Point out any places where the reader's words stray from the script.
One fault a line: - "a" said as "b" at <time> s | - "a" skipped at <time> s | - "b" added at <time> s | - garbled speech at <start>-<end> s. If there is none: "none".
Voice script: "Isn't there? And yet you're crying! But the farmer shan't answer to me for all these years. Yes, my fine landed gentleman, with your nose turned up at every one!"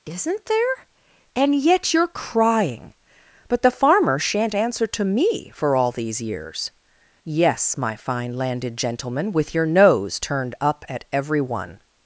none